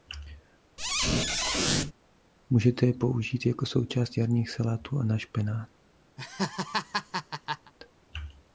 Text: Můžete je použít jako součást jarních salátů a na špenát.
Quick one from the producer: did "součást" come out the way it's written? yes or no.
yes